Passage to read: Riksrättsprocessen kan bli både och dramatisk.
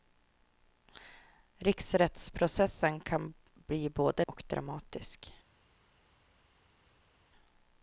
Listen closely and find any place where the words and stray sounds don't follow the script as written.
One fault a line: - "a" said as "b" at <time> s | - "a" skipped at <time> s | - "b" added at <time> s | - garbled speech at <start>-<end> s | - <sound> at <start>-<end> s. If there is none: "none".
none